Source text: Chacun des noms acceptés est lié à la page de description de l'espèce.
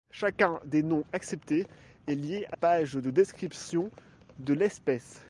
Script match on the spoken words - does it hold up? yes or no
no